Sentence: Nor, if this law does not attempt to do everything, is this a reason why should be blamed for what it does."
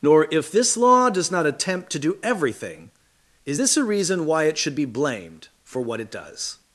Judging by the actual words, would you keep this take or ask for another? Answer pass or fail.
fail